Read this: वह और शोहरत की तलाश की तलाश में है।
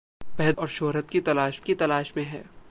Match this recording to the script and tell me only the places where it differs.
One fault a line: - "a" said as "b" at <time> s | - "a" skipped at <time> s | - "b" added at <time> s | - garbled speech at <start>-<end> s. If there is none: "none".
none